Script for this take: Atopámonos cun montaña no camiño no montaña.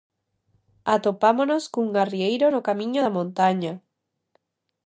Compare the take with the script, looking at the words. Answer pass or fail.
fail